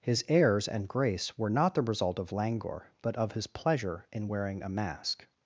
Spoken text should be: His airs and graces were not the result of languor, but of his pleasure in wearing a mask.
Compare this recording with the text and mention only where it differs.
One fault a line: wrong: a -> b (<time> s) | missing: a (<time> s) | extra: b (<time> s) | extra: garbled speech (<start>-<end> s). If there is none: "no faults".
wrong: graces -> grace (0.9 s)